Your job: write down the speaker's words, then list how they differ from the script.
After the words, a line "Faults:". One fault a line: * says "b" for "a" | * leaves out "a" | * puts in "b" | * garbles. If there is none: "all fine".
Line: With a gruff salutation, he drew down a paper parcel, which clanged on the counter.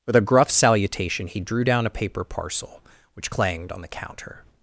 With a gruff salutation, he drew down a paper parcel, which clanged on the counter.
Faults:
all fine